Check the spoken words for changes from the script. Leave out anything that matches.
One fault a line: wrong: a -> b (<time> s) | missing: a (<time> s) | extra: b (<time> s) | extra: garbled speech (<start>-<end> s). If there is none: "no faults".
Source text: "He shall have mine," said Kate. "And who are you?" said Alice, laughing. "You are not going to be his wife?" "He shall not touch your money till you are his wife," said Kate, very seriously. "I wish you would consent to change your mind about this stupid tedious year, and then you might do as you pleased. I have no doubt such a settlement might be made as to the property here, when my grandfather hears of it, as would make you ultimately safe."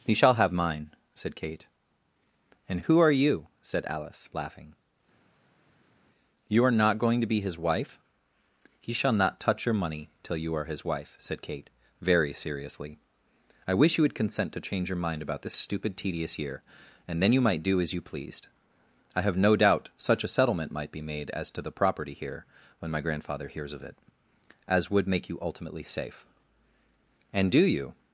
extra: And do you (27.3 s)